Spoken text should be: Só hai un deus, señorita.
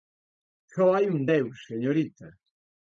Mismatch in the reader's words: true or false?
false